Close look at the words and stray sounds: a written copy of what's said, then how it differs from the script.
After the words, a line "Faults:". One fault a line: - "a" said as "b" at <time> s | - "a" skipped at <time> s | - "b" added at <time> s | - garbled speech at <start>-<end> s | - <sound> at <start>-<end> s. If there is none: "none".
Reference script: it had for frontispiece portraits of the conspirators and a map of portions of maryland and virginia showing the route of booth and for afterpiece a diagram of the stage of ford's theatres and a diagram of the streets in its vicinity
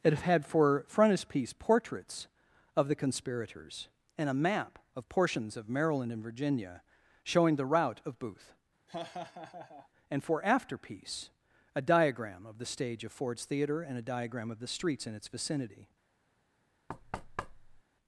it had for frontispiece portraits of the conspirators and a map of portions of maryland and virginia showing the route of booth and for afterpiece a diagram of the stage of ford's theatre and a diagram of the streets in its vicinity
Faults:
- laugh at 8.9-9.9 s
- "theatres" said as "theatre" at 13.5 s
- thud at 16.9-17.8 s